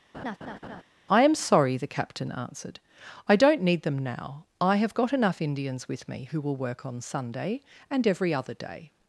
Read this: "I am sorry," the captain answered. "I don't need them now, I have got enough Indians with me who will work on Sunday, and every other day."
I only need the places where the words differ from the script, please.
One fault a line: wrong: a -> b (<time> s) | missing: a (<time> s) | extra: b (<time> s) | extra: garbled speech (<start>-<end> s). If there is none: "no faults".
no faults